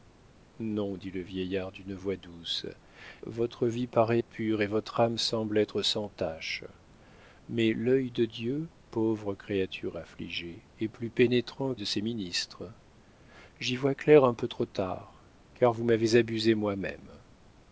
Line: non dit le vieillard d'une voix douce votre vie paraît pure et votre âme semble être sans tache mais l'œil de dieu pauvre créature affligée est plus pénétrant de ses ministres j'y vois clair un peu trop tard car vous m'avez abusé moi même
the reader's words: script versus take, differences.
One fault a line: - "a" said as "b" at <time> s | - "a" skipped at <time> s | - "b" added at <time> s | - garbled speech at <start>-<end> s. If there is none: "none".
none